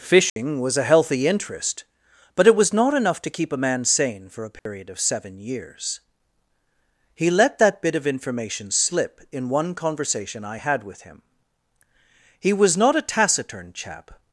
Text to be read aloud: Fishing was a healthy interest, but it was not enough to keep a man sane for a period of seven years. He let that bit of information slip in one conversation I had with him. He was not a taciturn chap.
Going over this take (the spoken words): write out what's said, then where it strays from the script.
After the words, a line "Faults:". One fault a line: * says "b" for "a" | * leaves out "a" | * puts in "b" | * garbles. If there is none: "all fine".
Fishing was a healthy interest, but it was not enough to keep a man sane for a period of seven years. He let that bit of information slip in one conversation I had with him. He was not a taciturn chap.
Faults:
all fine